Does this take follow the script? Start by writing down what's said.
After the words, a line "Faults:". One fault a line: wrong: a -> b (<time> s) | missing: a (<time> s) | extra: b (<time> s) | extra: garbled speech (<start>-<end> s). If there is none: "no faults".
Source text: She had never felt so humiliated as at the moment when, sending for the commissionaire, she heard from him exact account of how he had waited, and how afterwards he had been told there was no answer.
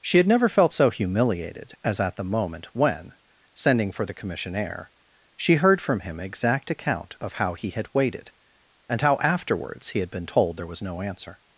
She had never felt so humiliated as at the moment when, sending for the commissionaire, she heard from him exact account of how he had waited, and how afterwards he had been told there was no answer.
Faults:
no faults